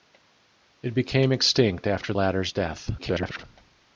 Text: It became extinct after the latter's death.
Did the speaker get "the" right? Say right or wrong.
wrong